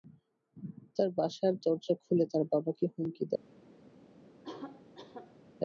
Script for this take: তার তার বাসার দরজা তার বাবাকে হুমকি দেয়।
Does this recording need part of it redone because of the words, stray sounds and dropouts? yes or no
yes